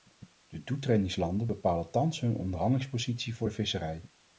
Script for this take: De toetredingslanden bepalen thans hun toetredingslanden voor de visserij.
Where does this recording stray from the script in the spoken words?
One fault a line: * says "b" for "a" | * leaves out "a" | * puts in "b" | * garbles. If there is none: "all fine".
* says "onderhandelingspositie" for "toetredingslanden"